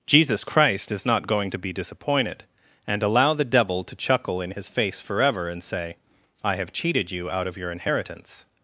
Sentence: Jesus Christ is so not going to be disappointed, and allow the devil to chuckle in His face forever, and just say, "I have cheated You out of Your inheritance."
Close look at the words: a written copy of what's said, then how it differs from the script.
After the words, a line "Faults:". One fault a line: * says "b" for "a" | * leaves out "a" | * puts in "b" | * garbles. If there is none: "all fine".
Jesus Christ is not going to be disappointed, and allow the devil to chuckle in His face forever, and say, "I have cheated You out of Your inheritance."
Faults:
* leaves out "so"
* leaves out "just"